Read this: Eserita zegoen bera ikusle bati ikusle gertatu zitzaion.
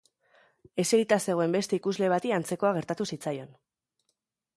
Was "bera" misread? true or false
true